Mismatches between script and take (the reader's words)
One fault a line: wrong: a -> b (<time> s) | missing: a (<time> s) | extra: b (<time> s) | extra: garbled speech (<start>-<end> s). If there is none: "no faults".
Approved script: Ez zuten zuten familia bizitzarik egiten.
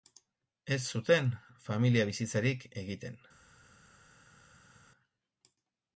missing: zuten (1.3 s)